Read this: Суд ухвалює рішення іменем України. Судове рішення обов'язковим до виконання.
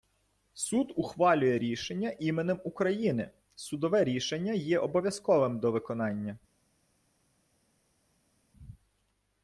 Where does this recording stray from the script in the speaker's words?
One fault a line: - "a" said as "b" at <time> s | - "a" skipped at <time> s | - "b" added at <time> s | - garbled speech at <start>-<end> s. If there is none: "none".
- "є" added at 4.5 s